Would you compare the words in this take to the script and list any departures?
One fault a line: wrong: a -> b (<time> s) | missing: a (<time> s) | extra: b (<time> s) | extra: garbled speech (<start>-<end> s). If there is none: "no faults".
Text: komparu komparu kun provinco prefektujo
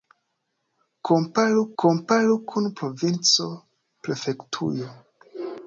no faults